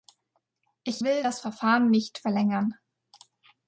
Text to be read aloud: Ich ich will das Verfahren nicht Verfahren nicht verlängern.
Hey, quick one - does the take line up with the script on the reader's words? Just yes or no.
no